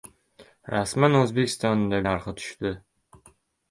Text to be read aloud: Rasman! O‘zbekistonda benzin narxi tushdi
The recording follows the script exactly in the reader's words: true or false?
false